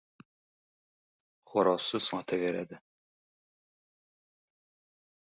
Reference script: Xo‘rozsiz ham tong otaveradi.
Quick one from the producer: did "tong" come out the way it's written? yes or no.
no